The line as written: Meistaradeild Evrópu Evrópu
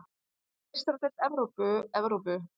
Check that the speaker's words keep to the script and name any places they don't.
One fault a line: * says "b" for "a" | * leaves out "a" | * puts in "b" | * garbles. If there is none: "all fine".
all fine